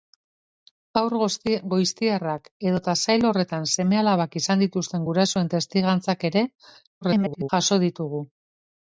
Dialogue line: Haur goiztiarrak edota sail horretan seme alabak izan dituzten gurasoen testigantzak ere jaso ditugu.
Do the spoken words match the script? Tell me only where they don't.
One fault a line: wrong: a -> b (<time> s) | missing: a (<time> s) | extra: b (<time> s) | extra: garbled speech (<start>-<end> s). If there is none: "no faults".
extra: garbled speech (7.0-7.5 s)